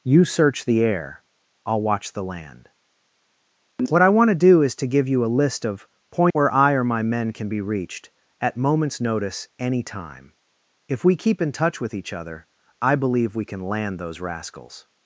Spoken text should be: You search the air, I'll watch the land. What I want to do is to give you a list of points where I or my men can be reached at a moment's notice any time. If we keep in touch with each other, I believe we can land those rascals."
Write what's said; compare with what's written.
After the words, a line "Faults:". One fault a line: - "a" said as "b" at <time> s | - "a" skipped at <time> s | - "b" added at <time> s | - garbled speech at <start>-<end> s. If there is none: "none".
You search the air, I'll watch the land. What I want to do is to give you a list of points where I or my men can be reached at moment's notice any time. If we keep in touch with each other, I believe we can land those rascals."
Faults:
- "a" skipped at 8.6 s